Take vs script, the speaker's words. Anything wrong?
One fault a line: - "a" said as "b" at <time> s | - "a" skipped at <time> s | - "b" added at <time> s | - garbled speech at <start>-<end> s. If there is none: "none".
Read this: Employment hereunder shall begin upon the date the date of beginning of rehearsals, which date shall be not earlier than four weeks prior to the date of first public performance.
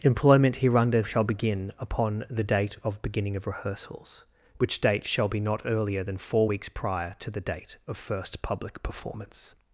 - "the date" skipped at 2.8 s